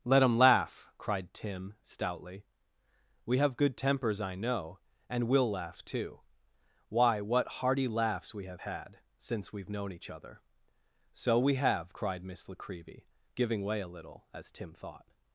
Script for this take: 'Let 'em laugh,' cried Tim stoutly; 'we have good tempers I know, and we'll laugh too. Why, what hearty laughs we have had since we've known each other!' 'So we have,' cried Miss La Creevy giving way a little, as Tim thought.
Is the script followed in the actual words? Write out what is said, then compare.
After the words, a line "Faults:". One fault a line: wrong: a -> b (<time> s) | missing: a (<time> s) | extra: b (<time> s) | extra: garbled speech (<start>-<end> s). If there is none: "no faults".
'Let 'em laugh,' cried Tim stoutly; 'we have good tempers I know, and we'll laugh too. Why, what hearty laughs we have had since we've known each other!' 'So we have,' cried Miss La Creevy giving way a little, as Tim thought.
Faults:
no faults